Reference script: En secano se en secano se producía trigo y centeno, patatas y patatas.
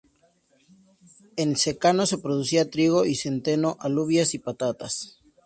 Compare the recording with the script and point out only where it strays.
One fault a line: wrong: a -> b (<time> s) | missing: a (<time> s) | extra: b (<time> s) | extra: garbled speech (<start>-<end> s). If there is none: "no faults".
missing: en secano se (2.2 s)
wrong: patatas -> alubias (3.8 s)